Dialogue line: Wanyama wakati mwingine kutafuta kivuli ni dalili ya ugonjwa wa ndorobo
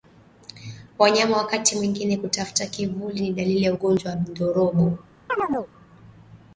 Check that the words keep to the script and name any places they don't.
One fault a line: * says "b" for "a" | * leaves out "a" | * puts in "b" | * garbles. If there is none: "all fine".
all fine